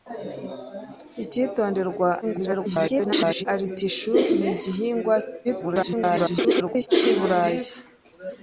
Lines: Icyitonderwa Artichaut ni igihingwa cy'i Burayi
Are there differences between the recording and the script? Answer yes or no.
yes